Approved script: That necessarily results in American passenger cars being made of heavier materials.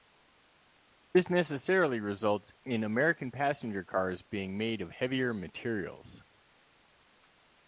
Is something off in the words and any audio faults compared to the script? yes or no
yes